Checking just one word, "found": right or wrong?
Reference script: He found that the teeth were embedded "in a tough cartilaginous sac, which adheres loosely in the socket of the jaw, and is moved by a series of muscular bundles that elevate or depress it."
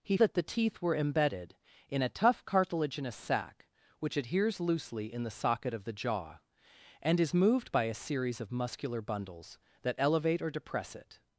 wrong